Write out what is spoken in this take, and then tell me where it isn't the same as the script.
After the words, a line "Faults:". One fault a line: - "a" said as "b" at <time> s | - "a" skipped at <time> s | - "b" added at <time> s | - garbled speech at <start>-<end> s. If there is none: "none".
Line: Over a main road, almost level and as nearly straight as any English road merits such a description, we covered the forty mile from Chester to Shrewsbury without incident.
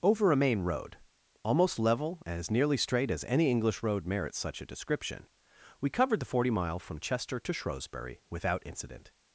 Over a main road, almost level and as nearly straight as any English road merits such a description, we covered the forty mile from Chester to Shrewsbury without incident.
Faults:
none